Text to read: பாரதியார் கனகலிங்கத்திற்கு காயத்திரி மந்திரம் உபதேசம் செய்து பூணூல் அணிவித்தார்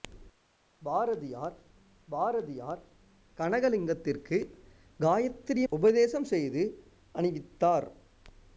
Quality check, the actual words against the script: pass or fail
fail